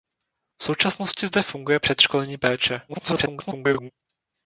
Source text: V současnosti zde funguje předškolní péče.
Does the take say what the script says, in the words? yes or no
no